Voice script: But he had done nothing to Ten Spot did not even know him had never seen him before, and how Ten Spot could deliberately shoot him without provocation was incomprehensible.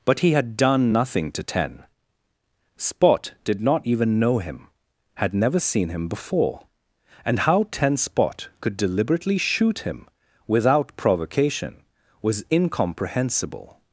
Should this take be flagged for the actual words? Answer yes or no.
no